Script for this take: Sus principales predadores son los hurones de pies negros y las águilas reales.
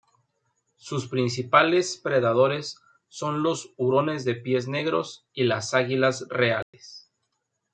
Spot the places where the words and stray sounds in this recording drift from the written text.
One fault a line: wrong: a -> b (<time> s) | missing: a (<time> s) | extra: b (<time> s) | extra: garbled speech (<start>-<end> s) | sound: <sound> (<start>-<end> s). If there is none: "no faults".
sound: dropout (6.6-6.7 s)